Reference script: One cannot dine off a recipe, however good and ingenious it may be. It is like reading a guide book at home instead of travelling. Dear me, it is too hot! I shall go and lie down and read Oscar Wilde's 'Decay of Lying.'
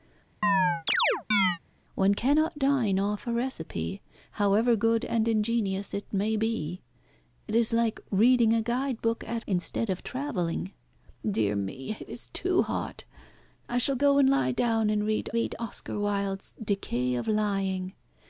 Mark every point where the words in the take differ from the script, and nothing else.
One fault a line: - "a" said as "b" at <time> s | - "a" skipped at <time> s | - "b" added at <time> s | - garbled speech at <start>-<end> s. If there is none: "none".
- "home" skipped at 9.4 s
- "read" added at 15.3 s